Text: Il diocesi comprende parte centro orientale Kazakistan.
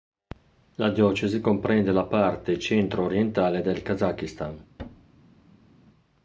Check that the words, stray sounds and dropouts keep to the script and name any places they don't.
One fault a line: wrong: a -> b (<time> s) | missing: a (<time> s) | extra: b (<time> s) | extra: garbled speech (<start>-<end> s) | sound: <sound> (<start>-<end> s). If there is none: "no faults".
wrong: Il -> La (0.8 s)
extra: la (1.9 s)
extra: del (3.6 s)
sound: thud (4.8-5.8 s)